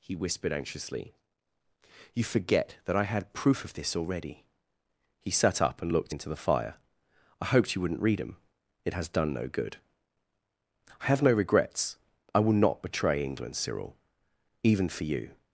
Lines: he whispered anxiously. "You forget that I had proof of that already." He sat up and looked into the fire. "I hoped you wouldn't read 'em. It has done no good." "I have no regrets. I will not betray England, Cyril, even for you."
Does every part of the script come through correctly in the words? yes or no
no